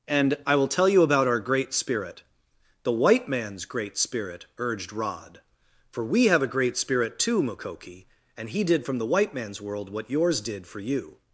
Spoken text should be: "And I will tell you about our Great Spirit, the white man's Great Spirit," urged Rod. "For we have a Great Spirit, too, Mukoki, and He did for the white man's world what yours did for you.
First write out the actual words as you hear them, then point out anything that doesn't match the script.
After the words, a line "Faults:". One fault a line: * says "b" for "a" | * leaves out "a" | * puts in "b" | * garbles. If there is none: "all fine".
"And I will tell you about our Great Spirit, the white man's Great Spirit," urged Rod. "For we have a Great Spirit, too, Mukoki, and He did from the white man's world what yours did for you.
Faults:
* says "from" for "for"